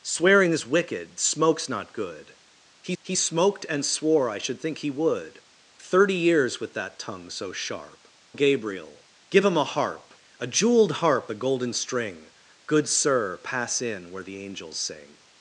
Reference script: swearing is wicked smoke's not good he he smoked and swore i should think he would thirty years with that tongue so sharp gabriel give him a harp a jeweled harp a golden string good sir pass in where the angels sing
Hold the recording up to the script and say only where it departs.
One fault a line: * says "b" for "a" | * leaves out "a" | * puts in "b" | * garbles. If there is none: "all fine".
all fine